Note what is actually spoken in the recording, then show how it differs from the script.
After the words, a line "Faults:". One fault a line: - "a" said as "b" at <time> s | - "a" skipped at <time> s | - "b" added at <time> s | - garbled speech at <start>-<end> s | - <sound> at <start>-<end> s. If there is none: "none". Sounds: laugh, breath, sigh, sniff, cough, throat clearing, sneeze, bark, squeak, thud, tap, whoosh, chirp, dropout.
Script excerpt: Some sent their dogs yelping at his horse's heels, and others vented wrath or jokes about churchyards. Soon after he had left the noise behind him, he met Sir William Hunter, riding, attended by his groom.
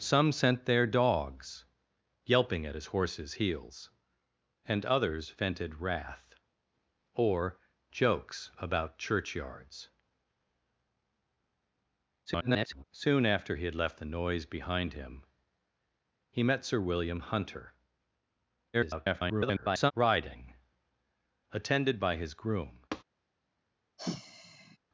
Some sent their dogs yelping at his horse's heels, and others vented wrath or jokes about churchyards. [garbled] Soon after he had left the noise behind him, he met Sir William Hunter, [garbled] riding, attended by his groom.
Faults:
- garbled speech at 12.3-12.8 s
- garbled speech at 18.7-19.9 s
- tap at 22.9-23.0 s
- sigh at 24.0-24.8 s